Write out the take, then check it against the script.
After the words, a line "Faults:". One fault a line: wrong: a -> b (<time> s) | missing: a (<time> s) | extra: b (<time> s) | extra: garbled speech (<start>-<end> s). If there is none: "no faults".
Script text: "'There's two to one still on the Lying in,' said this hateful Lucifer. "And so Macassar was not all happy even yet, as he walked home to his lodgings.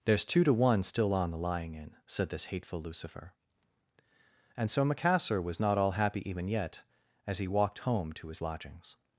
"'There's two to one still on the Lying in,' said this hateful Lucifer. "And so Macassar was not all happy even yet, as he walked home to his lodgings.
Faults:
no faults